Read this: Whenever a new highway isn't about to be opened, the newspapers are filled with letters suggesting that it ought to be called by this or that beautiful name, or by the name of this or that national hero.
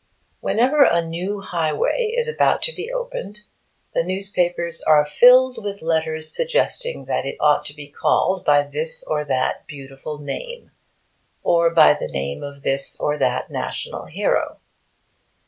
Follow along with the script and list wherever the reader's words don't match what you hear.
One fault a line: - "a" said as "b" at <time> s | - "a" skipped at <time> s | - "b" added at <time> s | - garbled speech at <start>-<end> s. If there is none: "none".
- "isn't" said as "is" at 2.2 s